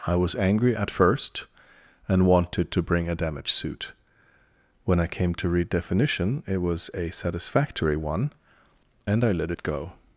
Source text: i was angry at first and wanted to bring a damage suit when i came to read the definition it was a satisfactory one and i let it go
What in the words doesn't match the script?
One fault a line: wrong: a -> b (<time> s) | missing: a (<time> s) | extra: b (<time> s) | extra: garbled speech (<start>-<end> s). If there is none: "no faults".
missing: the (5.7 s)